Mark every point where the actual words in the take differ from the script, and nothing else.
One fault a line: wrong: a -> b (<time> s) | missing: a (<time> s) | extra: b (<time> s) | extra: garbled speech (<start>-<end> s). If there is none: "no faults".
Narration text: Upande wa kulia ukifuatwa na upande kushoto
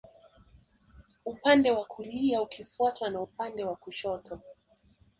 extra: wa (3.6 s)